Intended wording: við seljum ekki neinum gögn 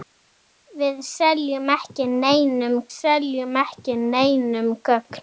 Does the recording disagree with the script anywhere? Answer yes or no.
yes